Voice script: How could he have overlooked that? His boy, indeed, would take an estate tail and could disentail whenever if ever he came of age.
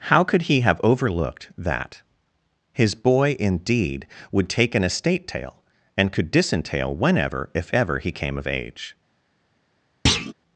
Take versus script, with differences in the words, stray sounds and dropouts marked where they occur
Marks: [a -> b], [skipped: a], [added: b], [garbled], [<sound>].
How could he have overlooked that? His boy, indeed, would take an estate tail and could disentail whenever if ever he came of age. [thud]